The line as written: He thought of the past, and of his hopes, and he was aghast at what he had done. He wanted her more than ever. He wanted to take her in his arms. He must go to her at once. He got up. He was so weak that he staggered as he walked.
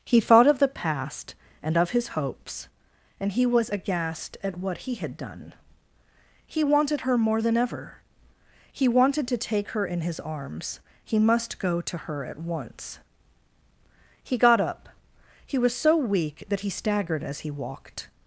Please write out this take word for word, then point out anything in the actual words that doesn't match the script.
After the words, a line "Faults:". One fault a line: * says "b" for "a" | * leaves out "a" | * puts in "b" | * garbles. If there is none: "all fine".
He thought of the past, and of his hopes, and he was aghast at what he had done. He wanted her more than ever. He wanted to take her in his arms. He must go to her at once. He got up. He was so weak that he staggered as he walked.
Faults:
all fine